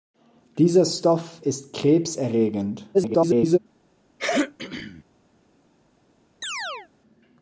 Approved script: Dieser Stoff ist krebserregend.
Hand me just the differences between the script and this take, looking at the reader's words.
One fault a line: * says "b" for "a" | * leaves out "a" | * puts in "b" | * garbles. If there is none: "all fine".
* garbles